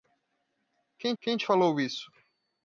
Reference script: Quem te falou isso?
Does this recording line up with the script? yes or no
no